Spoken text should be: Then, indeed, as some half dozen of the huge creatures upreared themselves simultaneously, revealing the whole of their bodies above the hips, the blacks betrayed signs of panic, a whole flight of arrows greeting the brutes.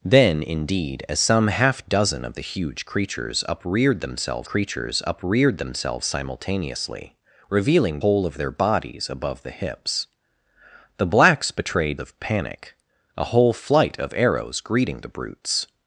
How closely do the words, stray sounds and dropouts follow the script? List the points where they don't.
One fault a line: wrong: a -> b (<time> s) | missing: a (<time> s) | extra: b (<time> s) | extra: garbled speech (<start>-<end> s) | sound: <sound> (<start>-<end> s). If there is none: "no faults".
extra: creatures upreared themselves (4.4 s)
missing: the (8.0 s)
missing: signs (12.0 s)